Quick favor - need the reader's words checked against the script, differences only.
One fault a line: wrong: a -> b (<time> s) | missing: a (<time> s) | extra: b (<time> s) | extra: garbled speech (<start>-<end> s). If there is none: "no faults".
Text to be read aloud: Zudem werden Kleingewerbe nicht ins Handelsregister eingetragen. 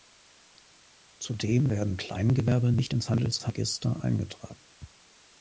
no faults